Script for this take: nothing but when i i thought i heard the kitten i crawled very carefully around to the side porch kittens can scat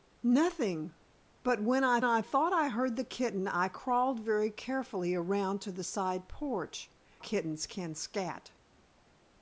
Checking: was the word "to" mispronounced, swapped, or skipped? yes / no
no